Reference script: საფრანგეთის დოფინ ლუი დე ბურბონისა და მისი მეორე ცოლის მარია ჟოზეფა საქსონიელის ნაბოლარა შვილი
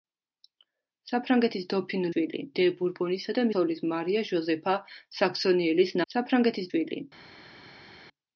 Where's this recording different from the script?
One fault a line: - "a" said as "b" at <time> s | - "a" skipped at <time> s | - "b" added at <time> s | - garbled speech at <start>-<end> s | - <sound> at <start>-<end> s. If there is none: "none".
- "ლუი" said as "შვილი" at 2.1 s
- "მისი მეორე" skipped at 3.5 s
- "ნაბოლარა" said as "საფრანგეთის" at 6.1 s